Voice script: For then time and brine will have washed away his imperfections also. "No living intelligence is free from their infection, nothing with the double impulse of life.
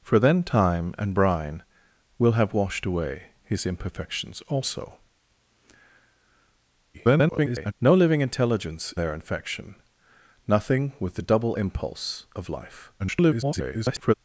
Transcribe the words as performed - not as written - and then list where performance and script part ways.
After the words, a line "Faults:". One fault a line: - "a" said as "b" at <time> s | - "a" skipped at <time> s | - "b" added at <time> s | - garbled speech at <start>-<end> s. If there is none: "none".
For then time and brine will have washed away his imperfections also. [garbled] "No living intelligence their infection, nothing with the double impulse of life. [garbled]
Faults:
- garbled speech at 6.9-7.7 s
- "is free from" skipped at 8.9 s
- garbled speech at 13.0-14.1 s